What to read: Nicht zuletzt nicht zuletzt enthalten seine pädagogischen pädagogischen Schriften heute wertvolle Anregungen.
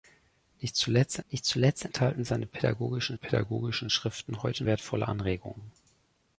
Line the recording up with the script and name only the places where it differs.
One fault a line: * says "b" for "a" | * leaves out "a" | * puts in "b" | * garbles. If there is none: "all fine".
all fine